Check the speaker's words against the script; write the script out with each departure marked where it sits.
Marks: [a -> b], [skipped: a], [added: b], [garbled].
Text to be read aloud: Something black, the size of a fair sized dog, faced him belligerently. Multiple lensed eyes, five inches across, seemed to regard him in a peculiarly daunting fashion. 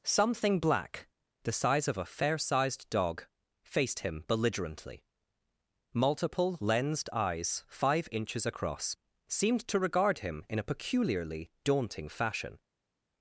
Something black, the size of a fair sized dog, faced him belligerently. Multiple lensed eyes, five inches across, seemed to regard him in a peculiarly daunting fashion.